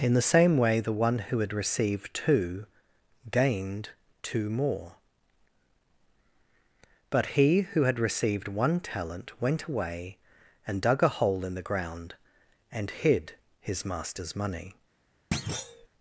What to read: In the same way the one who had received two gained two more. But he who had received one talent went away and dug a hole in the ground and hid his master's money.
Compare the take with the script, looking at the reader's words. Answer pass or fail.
pass